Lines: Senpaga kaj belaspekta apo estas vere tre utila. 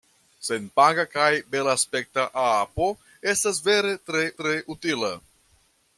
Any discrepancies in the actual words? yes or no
yes